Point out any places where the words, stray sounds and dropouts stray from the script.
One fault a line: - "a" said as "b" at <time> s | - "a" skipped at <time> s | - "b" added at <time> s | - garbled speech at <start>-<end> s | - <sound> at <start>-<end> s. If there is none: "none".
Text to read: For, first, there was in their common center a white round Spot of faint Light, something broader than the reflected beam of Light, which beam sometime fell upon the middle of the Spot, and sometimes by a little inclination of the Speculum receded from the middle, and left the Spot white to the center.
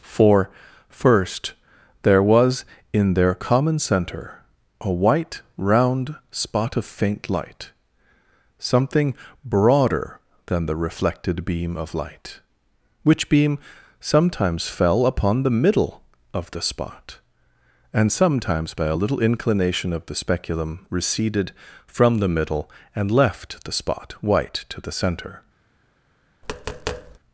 - "sometime" said as "sometimes" at 14.0 s
- tap at 26.4-27.2 s